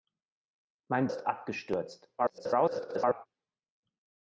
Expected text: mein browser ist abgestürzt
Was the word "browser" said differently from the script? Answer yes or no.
yes